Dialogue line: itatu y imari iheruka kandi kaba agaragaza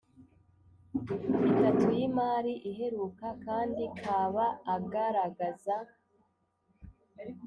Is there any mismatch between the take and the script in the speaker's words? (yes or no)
no